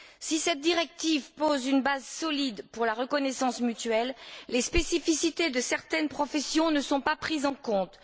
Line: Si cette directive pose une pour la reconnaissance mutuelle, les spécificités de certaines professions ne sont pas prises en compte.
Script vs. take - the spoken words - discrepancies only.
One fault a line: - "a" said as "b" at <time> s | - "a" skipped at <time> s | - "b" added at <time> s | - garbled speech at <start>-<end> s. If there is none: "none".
- "base solide" added at 1.8 s